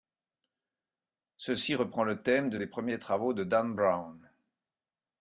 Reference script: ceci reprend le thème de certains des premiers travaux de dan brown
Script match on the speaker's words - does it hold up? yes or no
no